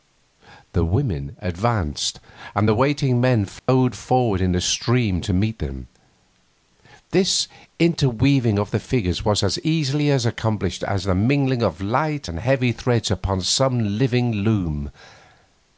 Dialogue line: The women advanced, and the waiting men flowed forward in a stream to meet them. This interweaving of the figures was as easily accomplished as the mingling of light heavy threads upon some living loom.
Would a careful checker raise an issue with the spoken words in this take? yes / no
yes